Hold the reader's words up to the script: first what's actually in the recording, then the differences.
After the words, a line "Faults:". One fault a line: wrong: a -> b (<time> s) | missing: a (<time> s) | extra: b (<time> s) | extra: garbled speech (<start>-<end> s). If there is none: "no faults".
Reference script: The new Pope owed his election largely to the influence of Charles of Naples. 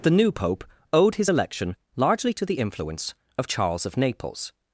The new Pope owed his election largely to the influence of Charles of Naples.
Faults:
no faults